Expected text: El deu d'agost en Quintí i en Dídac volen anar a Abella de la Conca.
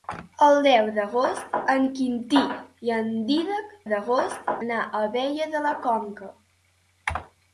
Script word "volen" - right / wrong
wrong